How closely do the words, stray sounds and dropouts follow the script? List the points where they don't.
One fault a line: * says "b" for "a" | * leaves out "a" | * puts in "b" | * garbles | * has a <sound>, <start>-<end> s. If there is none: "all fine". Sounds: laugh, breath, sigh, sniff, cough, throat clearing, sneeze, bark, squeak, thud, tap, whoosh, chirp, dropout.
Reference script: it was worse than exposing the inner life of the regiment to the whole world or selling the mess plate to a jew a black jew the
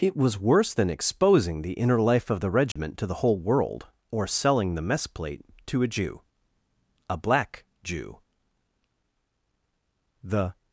* has a dropout, 2.7-2.8 s